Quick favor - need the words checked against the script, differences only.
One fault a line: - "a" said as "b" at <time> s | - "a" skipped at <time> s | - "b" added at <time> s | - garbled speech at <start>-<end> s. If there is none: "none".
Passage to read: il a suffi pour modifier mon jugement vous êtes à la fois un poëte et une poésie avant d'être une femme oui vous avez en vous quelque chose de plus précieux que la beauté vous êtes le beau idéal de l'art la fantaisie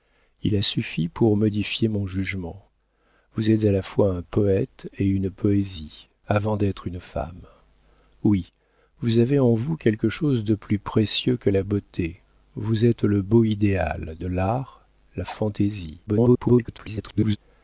- garbled speech at 16.1-17.4 s